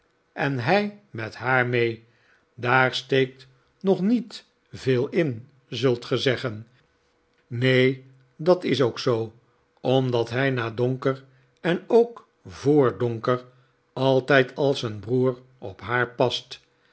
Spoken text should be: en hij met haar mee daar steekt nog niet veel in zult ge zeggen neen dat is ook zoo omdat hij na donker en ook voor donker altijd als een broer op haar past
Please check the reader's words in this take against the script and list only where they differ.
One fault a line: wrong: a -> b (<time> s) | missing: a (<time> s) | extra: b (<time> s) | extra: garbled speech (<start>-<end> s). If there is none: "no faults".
no faults